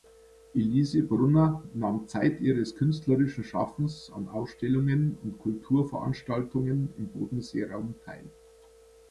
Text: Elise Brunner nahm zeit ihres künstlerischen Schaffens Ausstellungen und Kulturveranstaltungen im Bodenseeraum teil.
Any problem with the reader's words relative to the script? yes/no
yes